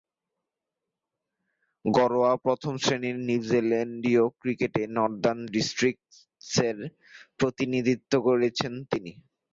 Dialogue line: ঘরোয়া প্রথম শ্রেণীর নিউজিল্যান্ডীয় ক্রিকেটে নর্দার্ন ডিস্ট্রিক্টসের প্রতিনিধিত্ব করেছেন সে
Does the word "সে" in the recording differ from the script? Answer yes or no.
yes